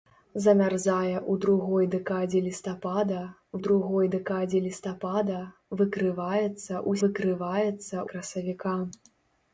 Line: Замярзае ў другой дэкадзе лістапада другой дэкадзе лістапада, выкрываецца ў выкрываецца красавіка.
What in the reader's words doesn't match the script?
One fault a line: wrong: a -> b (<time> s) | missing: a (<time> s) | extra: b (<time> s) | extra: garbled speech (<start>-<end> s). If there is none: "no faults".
no faults